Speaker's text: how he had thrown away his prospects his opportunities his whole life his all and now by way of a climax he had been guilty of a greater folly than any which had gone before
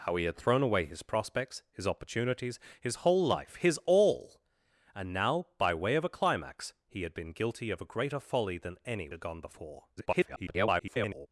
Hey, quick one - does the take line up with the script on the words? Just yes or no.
no